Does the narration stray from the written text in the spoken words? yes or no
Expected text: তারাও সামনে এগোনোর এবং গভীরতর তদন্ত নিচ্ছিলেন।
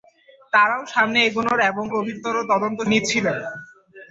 no